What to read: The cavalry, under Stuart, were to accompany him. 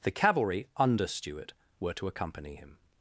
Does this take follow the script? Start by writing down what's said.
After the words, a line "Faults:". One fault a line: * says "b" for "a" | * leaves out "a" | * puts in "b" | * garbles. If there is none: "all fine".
The cavalry, under Stuart, were to accompany him.
Faults:
all fine